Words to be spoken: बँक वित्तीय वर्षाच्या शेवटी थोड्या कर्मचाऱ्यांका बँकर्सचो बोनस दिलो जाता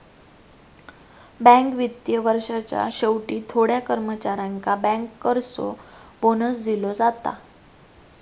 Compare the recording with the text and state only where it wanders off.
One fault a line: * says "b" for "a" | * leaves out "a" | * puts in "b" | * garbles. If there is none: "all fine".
all fine